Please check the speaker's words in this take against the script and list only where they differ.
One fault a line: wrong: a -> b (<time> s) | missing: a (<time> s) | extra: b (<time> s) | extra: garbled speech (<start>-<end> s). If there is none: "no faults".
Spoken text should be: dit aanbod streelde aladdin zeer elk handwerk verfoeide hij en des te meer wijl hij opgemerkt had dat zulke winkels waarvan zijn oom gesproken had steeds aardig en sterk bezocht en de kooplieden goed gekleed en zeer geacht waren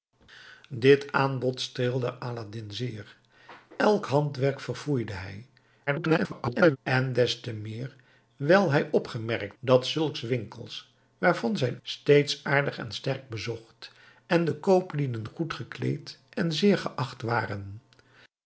extra: garbled speech (5.9-6.8 s)
missing: had (9.6 s)
missing: oom gesproken had (11.8 s)